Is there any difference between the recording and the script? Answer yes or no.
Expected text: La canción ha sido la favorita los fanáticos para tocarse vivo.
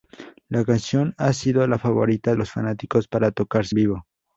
no